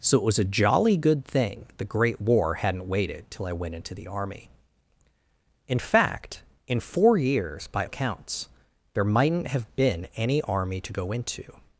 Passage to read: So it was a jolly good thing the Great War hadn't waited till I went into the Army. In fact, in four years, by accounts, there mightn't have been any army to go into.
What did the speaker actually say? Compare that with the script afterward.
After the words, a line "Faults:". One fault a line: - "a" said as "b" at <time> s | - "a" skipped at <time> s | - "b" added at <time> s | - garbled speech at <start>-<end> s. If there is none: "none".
So it was a jolly good thing the Great War hadn't waited till I went into the Army. In fact, in four years, by accounts, there mightn't have been any army to go into.
Faults:
none